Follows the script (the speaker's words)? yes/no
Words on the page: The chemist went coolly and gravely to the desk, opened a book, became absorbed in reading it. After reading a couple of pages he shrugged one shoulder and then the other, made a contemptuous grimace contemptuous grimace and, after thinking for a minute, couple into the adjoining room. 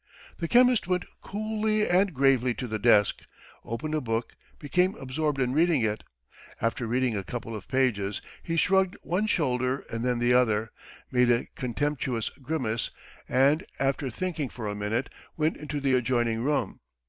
no